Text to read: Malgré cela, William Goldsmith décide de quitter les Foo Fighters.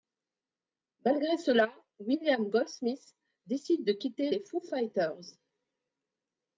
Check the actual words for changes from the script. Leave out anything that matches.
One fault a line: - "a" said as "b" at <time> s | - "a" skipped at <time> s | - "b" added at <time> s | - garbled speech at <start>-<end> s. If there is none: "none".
none